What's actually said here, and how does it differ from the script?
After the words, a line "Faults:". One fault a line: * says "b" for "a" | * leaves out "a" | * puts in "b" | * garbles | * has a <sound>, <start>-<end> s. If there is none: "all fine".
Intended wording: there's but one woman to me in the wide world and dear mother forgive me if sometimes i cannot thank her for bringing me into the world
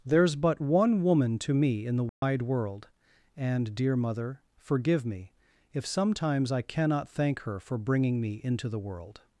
there's but one woman to me in the wide world and dear mother forgive me if sometimes i cannot thank her for bringing me into the world
Faults:
* has a dropout, 2.1-2.2 s